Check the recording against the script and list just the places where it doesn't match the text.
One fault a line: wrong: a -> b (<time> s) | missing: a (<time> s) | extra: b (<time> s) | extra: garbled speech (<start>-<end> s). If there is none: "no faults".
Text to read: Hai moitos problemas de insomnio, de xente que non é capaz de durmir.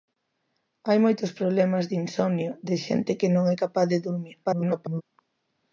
extra: garbled speech (4.4-5.0 s)